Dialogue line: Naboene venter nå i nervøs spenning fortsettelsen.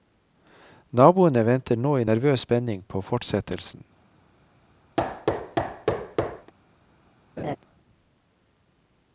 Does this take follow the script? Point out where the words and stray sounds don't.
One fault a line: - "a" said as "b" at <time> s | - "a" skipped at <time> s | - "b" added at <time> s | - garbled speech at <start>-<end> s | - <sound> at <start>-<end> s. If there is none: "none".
- "på" added at 2.9 s
- thud at 5.0-6.5 s
- laugh at 7.4-7.6 s